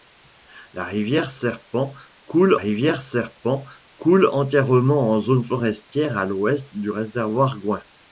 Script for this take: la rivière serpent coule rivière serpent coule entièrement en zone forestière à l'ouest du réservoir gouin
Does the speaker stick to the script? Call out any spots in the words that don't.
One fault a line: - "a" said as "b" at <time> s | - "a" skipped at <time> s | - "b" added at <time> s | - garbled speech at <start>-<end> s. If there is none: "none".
none